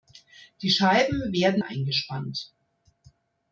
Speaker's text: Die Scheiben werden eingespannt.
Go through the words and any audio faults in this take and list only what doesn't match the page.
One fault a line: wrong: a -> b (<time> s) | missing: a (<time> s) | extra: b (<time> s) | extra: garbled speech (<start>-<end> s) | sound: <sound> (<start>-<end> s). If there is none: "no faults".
no faults